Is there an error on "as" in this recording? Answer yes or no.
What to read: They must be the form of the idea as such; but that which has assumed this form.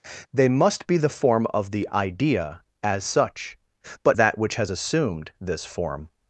no